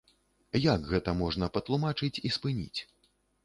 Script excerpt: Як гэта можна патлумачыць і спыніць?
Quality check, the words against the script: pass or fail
pass